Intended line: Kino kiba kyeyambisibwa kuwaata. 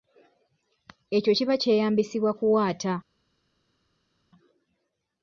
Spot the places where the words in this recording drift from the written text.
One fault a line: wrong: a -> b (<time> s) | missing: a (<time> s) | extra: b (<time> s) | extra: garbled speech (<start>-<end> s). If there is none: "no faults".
wrong: Kino -> Ekyo (1.2 s)